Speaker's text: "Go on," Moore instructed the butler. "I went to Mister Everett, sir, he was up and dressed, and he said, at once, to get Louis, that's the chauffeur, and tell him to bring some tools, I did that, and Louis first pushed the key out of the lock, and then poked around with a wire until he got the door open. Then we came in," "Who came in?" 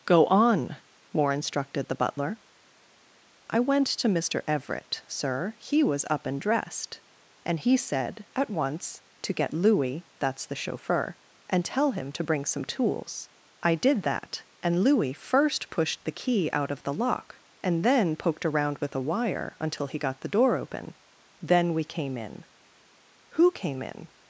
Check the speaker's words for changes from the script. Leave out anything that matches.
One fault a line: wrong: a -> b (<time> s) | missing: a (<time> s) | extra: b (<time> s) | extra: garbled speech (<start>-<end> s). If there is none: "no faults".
no faults